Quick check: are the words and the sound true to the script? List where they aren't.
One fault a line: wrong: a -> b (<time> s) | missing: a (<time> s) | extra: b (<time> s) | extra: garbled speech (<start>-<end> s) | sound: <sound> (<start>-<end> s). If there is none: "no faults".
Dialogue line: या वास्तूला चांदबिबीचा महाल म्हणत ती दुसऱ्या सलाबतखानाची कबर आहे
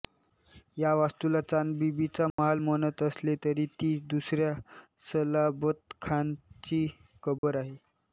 sound: dropout (2.3-2.4 s)
extra: असले तरी (3.0 s)
sound: dropout (7.4-7.4 s)